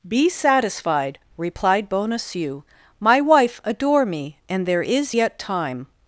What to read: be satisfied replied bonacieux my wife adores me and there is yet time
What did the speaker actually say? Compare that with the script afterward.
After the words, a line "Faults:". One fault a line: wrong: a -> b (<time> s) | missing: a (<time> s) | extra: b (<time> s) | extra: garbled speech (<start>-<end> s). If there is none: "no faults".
be satisfied replied bonacieux my wife adore me and there is yet time
Faults:
wrong: adores -> adore (3.6 s)